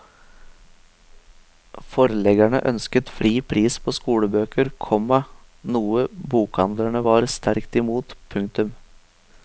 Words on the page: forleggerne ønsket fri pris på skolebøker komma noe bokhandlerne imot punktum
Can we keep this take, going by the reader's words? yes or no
no